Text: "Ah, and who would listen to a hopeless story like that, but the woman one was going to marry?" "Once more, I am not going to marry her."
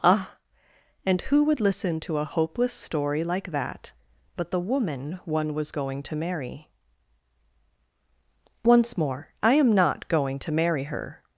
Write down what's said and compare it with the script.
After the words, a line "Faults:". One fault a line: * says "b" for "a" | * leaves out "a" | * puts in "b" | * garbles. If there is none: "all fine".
"Ah, and who would listen to a hopeless story like that, but the woman one was going to marry?" "Once more, I am not going to marry her."
Faults:
all fine